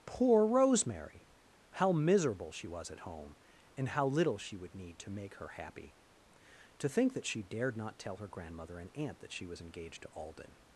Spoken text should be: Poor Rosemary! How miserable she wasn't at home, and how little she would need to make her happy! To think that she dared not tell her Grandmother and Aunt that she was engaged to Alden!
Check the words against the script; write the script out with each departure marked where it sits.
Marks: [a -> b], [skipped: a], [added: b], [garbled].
Poor Rosemary! How miserable she [wasn't -> was] at home, and how little she would need to make her happy! To think that she dared not tell her Grandmother and Aunt that she was engaged to Alden!